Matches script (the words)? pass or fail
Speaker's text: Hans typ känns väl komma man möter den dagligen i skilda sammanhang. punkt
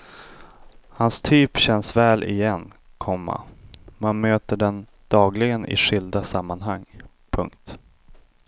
fail